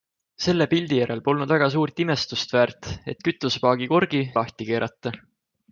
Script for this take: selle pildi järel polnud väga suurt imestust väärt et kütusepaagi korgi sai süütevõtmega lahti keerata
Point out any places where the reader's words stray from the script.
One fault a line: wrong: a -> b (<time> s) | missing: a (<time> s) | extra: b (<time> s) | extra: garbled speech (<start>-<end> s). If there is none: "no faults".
missing: sai süütevõtmega (4.2 s)